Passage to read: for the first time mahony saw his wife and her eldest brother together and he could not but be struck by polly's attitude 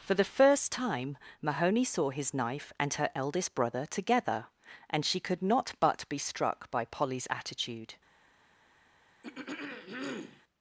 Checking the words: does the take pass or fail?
fail